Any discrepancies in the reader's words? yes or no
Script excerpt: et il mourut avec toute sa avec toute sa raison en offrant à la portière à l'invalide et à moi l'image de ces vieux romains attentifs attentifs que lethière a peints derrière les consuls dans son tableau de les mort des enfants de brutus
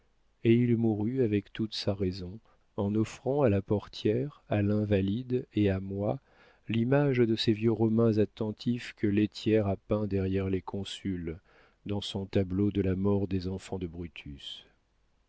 yes